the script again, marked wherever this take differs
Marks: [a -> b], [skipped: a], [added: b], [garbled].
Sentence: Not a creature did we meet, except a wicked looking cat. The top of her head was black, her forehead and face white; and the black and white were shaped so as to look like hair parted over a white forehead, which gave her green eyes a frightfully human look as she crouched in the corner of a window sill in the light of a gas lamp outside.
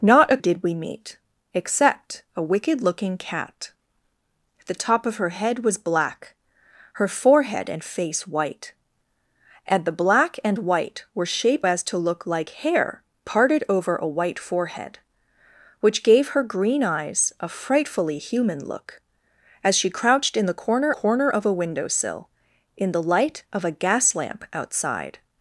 Not a [skipped: creature] did we meet, except a wicked looking cat. The top of her head was black, her forehead and face white; and the black and white were shaped [skipped: so] as to look like hair parted over a white forehead, which gave her green eyes a frightfully human look as she crouched in the corner [added: corner] of a window sill in the light of a gas lamp outside.